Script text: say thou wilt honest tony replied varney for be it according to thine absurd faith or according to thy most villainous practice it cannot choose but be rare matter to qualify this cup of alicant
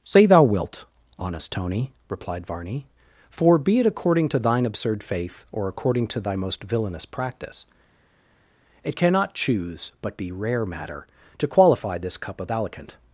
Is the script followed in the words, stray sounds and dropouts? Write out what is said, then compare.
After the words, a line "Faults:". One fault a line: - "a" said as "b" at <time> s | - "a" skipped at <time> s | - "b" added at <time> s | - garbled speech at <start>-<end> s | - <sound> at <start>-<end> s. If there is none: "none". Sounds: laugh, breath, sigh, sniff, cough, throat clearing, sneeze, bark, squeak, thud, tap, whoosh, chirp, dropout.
say thou wilt honest tony replied varney for be it according to thine absurd faith or according to thy most villainous practice it cannot choose but be rare matter to qualify this cup of alicant
Faults:
none